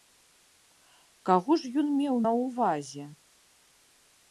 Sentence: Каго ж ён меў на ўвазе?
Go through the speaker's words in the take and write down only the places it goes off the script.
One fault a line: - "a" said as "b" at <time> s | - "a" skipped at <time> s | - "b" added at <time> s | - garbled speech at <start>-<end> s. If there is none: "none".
none